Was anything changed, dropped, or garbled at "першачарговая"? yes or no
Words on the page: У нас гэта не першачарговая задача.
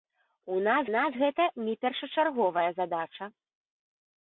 no